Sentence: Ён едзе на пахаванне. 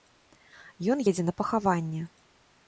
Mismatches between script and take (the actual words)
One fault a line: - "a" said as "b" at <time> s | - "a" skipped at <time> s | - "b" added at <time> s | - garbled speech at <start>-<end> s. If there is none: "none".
none